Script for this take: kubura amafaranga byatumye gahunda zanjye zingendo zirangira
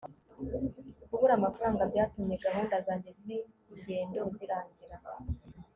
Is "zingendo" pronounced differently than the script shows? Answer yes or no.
no